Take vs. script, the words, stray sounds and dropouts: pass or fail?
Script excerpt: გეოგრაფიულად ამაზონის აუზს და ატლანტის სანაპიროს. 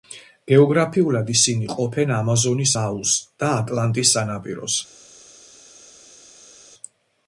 fail